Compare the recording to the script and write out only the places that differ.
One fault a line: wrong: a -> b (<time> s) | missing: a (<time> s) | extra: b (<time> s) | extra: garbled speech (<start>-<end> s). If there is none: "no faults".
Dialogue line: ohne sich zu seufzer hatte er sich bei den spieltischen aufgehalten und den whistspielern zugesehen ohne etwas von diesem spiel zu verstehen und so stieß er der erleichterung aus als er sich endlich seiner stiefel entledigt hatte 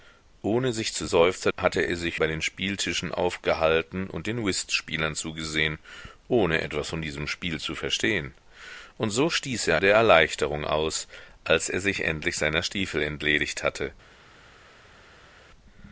no faults